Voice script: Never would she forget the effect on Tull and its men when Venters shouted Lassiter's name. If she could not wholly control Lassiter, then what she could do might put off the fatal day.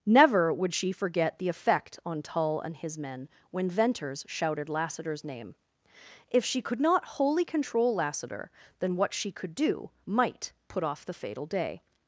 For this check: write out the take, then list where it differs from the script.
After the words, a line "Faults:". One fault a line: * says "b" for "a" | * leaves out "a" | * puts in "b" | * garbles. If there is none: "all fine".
Never would she forget the effect on Tull and his men when Venters shouted Lassiter's name. If she could not wholly control Lassiter, then what she could do might put off the fatal day.
Faults:
* says "his" for "its"